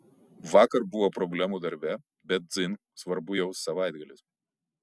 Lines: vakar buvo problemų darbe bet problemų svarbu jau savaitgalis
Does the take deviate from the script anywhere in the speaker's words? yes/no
yes